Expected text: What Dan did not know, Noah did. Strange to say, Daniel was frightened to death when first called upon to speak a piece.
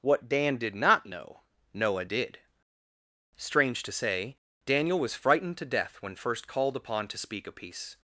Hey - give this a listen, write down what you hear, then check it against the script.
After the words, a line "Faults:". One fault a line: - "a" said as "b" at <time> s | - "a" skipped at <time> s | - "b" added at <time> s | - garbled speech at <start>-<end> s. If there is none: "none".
What Dan did not know, Noah did. Strange to say, Daniel was frightened to death when first called upon to speak a piece.
Faults:
none